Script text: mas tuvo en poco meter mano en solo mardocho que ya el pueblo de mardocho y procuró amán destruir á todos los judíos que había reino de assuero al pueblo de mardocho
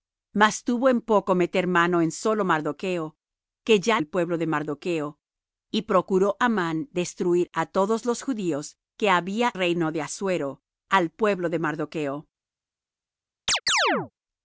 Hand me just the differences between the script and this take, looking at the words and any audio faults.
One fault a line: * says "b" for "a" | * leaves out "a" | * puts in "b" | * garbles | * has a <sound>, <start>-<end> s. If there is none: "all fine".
* has a chirp, 13.5-14.1 s